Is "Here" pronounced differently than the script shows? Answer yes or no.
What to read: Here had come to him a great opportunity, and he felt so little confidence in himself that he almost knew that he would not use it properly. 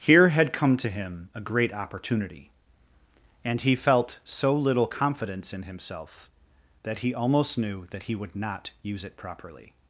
no